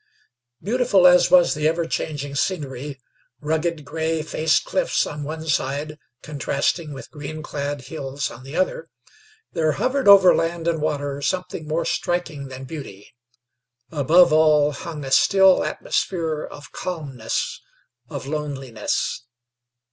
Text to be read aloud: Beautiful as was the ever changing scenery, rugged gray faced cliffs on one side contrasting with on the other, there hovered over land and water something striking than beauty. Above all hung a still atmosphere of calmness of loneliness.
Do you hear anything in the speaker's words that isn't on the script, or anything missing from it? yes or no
yes